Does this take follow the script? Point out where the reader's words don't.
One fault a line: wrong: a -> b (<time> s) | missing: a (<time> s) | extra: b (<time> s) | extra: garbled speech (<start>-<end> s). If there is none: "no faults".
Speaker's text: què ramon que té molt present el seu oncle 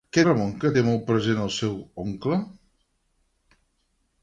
no faults